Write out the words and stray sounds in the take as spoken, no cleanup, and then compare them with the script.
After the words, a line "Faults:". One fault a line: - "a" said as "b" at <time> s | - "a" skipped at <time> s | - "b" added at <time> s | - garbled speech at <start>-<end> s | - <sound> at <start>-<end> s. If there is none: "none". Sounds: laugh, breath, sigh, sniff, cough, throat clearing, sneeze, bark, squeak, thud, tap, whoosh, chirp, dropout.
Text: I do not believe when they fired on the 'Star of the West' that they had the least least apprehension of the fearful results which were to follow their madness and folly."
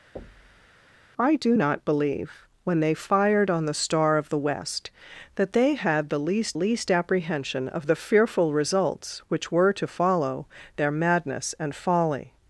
I do not believe when they fired on the 'Star of the West' that they had the least least apprehension of the fearful results which were to follow their madness and folly."
Faults:
- thud at 0.2-0.7 s